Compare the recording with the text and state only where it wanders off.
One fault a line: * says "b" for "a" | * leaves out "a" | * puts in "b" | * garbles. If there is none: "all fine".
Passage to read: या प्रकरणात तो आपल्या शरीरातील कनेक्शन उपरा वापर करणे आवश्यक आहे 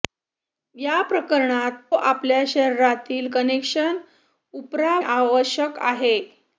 * leaves out "तो"
* leaves out "वापर करणे"